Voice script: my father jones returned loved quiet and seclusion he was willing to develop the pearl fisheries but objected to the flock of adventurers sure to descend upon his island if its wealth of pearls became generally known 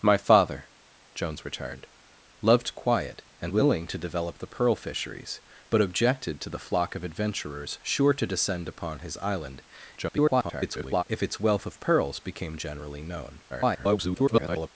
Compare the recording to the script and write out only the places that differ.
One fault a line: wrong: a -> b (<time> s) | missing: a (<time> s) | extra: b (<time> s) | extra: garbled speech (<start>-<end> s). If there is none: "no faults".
missing: seclusion he was (3.5 s)
extra: garbled speech (10.0-11.0 s)
extra: garbled speech (13.5-14.7 s)